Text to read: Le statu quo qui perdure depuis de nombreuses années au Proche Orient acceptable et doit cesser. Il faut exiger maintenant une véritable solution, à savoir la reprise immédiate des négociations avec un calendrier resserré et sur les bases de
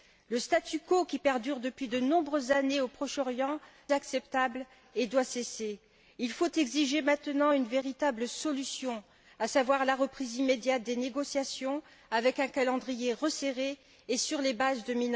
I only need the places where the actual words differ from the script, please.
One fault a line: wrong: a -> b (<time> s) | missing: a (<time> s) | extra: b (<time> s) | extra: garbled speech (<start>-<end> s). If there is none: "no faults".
no faults